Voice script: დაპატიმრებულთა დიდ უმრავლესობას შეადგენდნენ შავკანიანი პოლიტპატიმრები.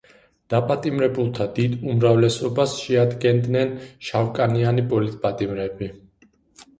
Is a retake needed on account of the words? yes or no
no